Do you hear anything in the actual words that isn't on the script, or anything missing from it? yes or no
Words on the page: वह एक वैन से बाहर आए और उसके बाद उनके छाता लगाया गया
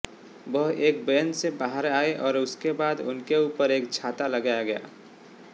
yes